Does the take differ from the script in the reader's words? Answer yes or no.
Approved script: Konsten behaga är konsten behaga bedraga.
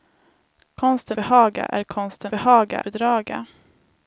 no